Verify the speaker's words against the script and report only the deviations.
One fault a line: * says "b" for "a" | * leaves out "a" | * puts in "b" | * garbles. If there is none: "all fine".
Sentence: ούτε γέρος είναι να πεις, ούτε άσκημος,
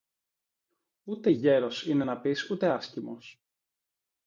all fine